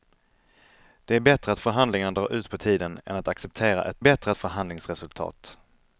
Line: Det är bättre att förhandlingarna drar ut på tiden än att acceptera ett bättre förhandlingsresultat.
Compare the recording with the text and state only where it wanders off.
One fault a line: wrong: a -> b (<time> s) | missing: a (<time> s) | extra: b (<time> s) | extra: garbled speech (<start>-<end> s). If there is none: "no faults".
no faults